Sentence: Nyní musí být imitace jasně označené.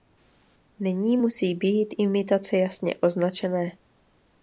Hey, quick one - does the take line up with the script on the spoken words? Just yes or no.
yes